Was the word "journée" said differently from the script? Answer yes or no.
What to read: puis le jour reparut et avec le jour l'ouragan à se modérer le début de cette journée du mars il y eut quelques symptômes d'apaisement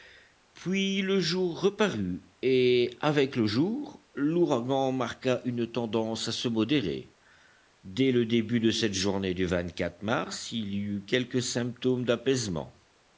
no